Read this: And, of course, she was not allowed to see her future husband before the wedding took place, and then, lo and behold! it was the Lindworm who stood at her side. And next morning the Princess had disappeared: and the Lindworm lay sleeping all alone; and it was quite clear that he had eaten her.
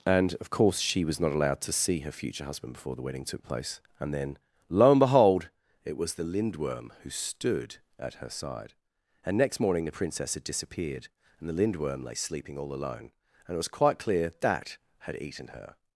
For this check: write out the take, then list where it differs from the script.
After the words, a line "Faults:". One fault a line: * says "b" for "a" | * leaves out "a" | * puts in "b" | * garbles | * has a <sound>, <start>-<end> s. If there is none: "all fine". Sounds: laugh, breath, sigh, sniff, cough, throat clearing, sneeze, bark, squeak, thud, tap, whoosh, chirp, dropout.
And, of course, she was not allowed to see her future husband before the wedding took place, and then, lo and behold! it was the Lindworm who stood at her side. And next morning the Princess had disappeared: and the Lindworm lay sleeping all alone; and it was quite clear that had eaten her.
Faults:
* leaves out "he"